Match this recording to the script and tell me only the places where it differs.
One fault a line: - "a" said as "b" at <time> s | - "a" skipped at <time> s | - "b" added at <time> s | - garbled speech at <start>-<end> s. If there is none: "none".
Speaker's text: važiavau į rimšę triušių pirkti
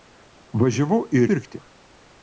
- "rimšę triušių" skipped at 1.2 s